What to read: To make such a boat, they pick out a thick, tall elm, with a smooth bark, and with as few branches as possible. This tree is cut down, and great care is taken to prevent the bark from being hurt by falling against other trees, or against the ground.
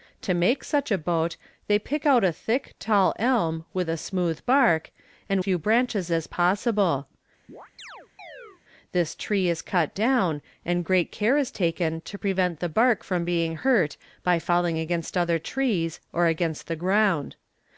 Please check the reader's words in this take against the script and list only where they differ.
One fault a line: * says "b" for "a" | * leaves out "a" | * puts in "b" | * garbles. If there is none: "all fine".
* leaves out "with as"